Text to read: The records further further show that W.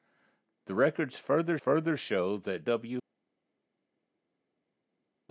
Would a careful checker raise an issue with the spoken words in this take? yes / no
no